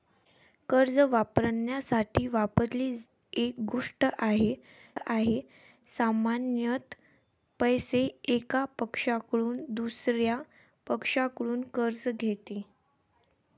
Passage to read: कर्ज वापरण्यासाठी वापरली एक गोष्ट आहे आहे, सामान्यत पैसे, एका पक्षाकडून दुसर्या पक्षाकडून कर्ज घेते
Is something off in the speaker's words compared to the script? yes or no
no